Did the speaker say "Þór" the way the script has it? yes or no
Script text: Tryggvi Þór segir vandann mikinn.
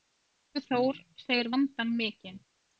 yes